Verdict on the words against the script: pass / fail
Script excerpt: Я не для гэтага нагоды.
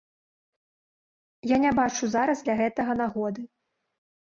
fail